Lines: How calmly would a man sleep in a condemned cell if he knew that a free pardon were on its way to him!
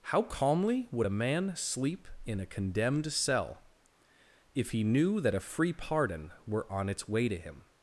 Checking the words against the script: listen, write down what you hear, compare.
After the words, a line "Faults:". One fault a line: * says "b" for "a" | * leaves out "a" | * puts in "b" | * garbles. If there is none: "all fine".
How calmly would a man sleep in a condemned cell if he knew that a free pardon were on its way to him!
Faults:
all fine